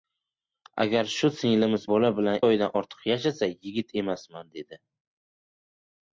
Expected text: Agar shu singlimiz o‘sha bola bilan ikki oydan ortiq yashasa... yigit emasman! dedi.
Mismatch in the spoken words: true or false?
true